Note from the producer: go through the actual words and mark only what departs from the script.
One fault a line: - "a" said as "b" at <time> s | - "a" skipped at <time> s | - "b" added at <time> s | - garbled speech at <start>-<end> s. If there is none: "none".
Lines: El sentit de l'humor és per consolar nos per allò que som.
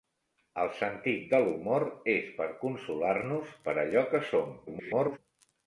- garbled speech at 4.7-5.2 s